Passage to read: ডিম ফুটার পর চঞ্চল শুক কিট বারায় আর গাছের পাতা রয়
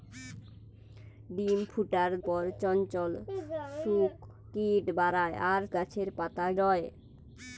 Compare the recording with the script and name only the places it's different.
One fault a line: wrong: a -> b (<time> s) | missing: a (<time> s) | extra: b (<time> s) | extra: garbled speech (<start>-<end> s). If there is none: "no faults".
no faults